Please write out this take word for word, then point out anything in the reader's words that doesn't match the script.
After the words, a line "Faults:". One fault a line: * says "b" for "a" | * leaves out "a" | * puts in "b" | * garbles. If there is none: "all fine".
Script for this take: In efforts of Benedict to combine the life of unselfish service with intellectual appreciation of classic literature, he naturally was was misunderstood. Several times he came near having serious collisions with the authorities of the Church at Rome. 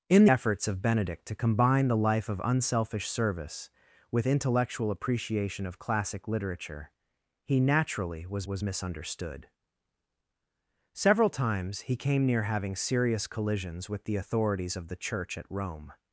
In efforts of Benedict to combine the life of unselfish service with intellectual appreciation of classic literature, he naturally was was misunderstood. Several times he came near having serious collisions with the authorities of the Church at Rome.
Faults:
all fine